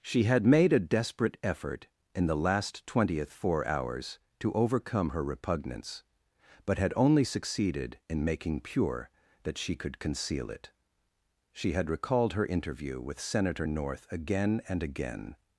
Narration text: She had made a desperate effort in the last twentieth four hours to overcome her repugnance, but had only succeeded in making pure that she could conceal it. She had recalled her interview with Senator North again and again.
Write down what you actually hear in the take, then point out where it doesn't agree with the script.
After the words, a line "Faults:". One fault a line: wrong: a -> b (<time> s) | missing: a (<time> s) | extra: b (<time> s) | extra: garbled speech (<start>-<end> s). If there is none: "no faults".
She had made a desperate effort in the last twentieth four hours to overcome her repugnance, but had only succeeded in making pure that she could conceal it. She had recalled her interview with Senator North again and again.
Faults:
no faults